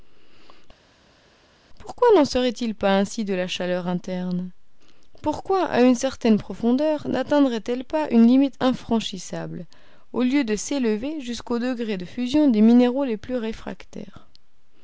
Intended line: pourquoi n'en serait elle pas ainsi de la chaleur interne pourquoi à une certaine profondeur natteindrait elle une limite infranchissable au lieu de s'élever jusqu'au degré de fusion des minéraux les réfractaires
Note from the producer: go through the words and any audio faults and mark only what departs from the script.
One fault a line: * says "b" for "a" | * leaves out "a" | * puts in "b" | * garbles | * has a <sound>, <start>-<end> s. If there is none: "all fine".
* says "il" for "elle"
* puts in "pas"
* puts in "plus"